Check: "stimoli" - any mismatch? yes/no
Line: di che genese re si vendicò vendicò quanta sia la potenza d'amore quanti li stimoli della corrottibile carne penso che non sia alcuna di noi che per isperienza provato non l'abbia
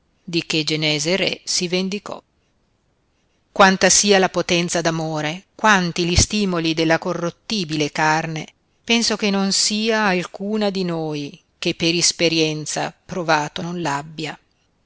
no